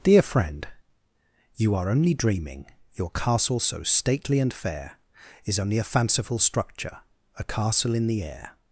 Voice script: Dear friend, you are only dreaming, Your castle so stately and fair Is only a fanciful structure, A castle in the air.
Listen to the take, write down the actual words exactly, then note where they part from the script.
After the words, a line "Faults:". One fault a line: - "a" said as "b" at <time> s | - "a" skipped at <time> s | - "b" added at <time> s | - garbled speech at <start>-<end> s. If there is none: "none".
Dear friend, you are only dreaming, Your castle so stately and fair Is only a fanciful structure, A castle in the air.
Faults:
none